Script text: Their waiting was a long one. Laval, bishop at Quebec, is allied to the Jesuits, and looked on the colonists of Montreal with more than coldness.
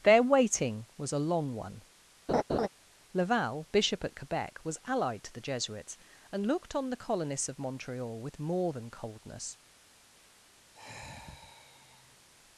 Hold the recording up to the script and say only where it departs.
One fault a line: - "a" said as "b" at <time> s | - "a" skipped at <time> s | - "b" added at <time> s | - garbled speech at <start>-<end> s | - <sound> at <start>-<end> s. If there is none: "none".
- laugh at 2.3-2.7 s
- "is" said as "was" at 4.6 s
- sigh at 10.7-12.3 s